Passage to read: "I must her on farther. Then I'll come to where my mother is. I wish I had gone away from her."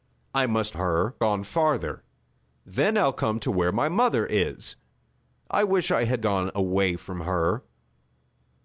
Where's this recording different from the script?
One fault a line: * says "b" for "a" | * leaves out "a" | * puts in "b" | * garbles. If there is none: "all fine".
all fine